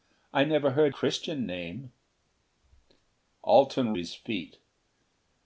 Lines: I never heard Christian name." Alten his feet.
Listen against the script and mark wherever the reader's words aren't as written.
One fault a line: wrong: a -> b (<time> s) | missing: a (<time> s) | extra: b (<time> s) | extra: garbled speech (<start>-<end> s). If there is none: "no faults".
no faults